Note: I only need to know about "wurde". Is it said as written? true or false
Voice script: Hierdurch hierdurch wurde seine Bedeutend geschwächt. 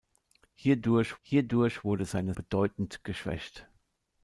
true